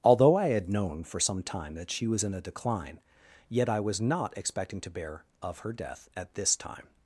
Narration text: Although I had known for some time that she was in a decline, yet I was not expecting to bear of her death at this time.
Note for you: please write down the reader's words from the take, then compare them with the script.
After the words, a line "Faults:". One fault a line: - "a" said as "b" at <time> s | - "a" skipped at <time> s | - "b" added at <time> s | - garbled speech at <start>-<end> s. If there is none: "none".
Although I had known for some time that she was in a decline, yet I was not expecting to bear of her death at this time.
Faults:
none